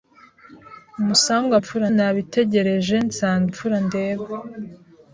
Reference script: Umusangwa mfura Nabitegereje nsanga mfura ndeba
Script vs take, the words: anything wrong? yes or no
no